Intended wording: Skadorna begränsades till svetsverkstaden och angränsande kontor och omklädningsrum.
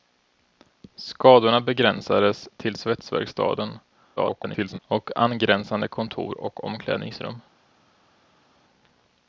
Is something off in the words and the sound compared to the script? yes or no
yes